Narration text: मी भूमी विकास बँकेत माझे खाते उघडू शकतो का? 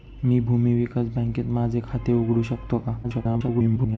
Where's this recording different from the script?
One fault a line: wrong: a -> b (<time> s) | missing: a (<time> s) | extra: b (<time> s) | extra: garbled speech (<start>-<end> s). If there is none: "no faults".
extra: garbled speech (3.0-4.0 s)